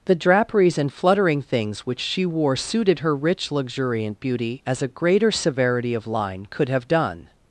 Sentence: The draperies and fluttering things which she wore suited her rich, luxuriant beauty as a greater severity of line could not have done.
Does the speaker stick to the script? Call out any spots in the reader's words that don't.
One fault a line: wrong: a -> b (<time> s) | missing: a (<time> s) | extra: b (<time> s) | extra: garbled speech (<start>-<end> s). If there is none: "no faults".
missing: not (6.7 s)